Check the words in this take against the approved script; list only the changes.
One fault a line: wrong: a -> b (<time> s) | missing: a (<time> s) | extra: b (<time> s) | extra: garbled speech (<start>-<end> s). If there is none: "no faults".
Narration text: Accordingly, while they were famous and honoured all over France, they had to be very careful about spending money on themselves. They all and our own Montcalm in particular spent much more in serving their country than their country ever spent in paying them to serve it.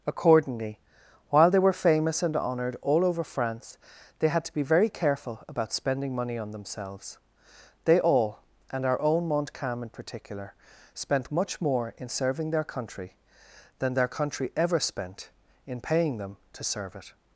no faults